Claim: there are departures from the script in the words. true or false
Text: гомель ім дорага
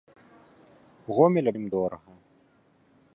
false